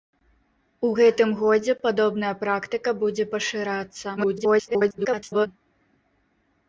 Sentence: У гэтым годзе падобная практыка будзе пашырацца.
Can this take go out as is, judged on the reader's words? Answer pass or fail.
fail